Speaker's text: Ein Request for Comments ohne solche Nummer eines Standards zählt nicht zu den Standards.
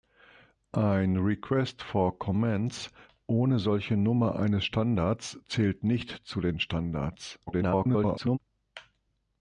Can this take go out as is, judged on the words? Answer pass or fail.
fail